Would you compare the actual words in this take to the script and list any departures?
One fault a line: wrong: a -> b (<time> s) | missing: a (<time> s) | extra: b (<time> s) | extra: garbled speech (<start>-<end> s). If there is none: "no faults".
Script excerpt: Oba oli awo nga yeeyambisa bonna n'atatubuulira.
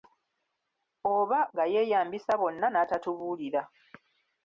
missing: oli awo (1.4 s)